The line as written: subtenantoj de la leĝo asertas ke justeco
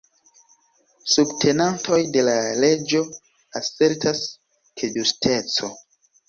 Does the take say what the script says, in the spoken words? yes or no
yes